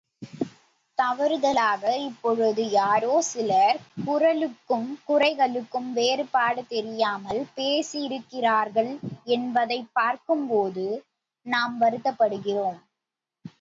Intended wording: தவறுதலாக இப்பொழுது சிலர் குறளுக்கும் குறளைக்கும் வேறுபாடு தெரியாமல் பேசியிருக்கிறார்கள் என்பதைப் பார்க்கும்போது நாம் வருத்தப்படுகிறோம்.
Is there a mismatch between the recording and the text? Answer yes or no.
yes